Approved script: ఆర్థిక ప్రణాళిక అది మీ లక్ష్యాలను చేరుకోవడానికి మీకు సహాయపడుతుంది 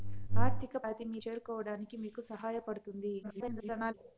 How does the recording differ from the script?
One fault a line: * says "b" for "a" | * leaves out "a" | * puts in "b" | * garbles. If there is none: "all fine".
* leaves out "ప్రణాళిక"
* leaves out "లక్ష్యాలను"
* garbles